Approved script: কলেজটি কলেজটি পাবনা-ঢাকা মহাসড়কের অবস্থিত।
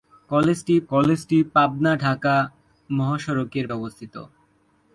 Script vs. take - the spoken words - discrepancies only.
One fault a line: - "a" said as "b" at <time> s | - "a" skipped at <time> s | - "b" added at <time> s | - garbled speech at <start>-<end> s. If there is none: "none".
none